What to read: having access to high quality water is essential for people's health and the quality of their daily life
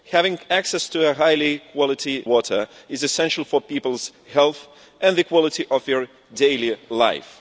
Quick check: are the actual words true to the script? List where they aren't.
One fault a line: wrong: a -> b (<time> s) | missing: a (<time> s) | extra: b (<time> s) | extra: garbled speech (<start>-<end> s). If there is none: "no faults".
no faults